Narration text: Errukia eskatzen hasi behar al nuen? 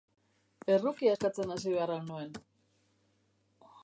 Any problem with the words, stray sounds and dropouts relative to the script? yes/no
no